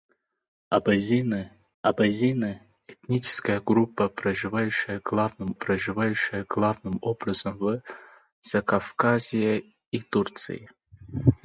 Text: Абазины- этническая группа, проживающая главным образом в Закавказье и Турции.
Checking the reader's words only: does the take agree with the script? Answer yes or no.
no